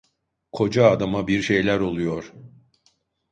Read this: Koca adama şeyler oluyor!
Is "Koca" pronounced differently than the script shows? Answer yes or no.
no